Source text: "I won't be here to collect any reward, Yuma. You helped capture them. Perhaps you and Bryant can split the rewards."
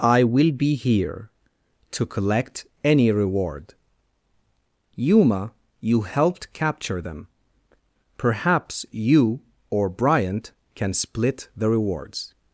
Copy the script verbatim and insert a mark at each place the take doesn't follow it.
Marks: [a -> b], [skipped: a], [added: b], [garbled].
"I [won't -> will] be here to collect any reward, Yuma. You helped capture them. Perhaps you [and -> or] Bryant can split the rewards."